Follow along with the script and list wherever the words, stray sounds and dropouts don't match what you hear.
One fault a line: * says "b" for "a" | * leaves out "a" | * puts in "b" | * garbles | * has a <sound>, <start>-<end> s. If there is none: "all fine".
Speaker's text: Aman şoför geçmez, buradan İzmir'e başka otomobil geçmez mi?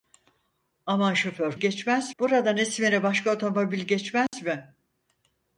* has a dropout, 4.3-4.3 s